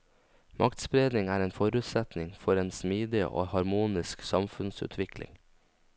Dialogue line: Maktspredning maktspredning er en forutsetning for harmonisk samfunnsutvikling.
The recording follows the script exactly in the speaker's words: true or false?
false